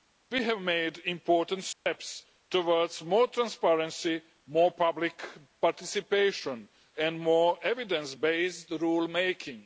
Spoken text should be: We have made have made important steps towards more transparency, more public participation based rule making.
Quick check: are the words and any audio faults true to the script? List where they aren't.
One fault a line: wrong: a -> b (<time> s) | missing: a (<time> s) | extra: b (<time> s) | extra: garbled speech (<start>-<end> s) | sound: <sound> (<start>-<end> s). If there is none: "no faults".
missing: have made (1.0 s)
sound: dropout (1.7-1.9 s)
extra: and more evidence (7.0 s)